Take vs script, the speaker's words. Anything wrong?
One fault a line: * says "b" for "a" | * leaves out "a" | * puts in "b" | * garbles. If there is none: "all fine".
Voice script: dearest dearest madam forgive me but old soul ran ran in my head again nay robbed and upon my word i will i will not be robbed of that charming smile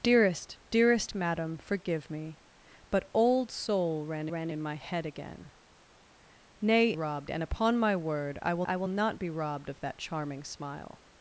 all fine